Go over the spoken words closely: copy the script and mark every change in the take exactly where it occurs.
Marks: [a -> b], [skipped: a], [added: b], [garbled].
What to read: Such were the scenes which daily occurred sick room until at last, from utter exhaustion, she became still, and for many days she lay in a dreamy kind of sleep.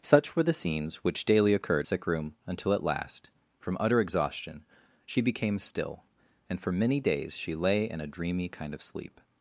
Such were the scenes which daily occurred sick room until at last, from utter exhaustion, she became still, and for many days she lay in a dreamy kind of sleep.